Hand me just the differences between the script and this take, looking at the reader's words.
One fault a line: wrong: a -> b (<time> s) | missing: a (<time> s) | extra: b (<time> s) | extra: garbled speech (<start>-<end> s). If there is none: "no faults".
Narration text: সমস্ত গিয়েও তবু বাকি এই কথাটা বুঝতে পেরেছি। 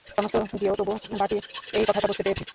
no faults